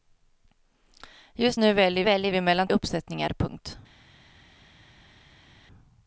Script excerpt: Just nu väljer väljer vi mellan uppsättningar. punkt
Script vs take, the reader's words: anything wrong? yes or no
no